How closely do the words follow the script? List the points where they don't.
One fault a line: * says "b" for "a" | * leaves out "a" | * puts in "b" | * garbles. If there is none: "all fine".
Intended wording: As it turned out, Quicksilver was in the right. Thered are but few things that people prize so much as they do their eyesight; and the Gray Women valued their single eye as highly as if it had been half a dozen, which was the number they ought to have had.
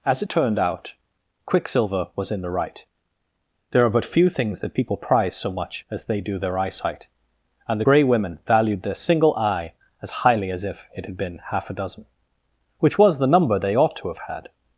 * says "There" for "Thered"